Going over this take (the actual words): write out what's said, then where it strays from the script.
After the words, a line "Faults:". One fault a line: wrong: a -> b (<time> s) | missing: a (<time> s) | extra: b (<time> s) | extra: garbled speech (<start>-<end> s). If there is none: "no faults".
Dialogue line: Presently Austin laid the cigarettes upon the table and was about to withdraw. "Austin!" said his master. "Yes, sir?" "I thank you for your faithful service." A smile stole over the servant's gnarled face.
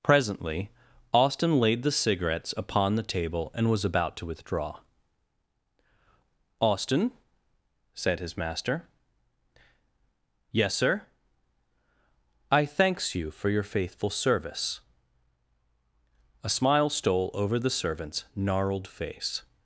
Presently Austin laid the cigarettes upon the table and was about to withdraw. "Austin!" said his master. "Yes, sir?" "I thanks you for your faithful service." A smile stole over the servant's gnarled face.
Faults:
wrong: thank -> thanks (12.7 s)